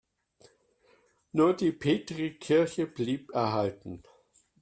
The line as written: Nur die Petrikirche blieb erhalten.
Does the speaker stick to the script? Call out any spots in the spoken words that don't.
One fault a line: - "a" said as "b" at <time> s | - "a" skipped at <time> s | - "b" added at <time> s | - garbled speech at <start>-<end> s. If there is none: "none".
none